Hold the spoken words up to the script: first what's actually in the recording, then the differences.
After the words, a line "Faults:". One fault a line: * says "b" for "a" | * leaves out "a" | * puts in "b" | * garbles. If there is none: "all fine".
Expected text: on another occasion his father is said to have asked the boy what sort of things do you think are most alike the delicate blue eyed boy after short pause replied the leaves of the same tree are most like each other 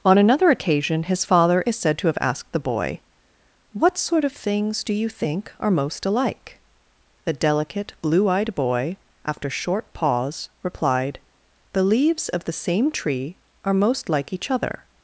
on another occasion his father is said to have asked the boy what sort of things do you think are most alike the delicate blue eyed boy after short pause replied the leaves of the same tree are most like each other
Faults:
all fine